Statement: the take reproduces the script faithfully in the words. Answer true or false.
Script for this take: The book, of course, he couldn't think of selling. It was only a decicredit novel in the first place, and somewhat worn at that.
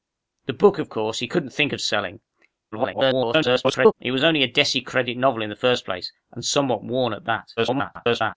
false